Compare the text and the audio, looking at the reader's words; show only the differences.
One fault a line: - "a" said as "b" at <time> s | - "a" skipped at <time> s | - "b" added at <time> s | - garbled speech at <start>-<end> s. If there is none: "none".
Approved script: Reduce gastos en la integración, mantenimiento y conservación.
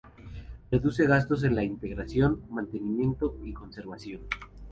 none